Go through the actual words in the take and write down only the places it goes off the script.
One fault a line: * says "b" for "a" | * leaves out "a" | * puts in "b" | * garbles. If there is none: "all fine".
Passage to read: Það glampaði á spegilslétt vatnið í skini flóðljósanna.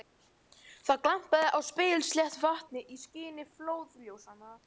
all fine